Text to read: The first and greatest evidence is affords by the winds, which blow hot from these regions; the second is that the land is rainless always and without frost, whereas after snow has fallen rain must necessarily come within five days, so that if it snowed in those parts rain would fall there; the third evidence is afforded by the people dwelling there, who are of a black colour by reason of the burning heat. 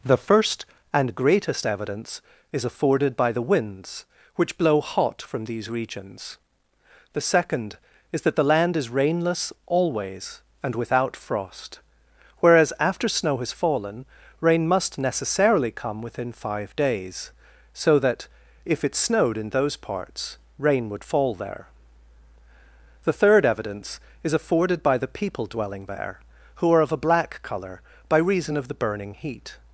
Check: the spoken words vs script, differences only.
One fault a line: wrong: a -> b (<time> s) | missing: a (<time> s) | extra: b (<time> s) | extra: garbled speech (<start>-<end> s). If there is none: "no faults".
wrong: affords -> afforded (2.6 s)